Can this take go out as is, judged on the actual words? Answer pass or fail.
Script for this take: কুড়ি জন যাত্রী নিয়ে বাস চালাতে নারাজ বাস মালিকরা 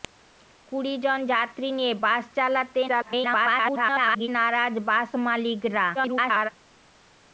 fail